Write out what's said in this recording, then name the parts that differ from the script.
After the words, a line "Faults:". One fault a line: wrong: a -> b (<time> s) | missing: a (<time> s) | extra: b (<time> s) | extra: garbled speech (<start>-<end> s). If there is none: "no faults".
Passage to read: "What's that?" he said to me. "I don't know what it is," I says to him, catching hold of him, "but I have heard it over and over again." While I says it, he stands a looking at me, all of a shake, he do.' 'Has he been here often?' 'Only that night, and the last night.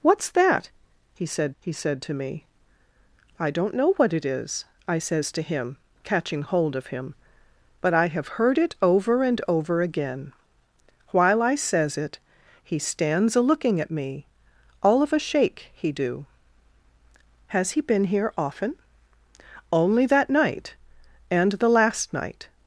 "What's that?" he said he said to me. "I don't know what it is," I says to him, catching hold of him, "but I have heard it over and over again." While I says it, he stands a looking at me, all of a shake, he do.' 'Has he been here often?' 'Only that night, and the last night.
Faults:
extra: he said (1.6 s)